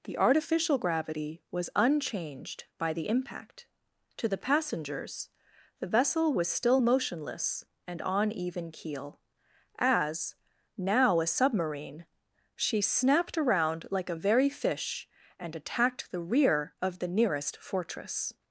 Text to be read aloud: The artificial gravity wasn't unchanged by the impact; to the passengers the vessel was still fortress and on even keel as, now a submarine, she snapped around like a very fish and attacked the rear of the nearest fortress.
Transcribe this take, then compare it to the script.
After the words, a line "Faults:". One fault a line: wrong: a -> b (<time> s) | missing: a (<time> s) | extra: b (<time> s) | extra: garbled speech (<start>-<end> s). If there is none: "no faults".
The artificial gravity was unchanged by the impact; to the passengers the vessel was still motionless and on even keel as, now a submarine, she snapped around like a very fish and attacked the rear of the nearest fortress.
Faults:
wrong: wasn't -> was (1.5 s)
wrong: fortress -> motionless (6.8 s)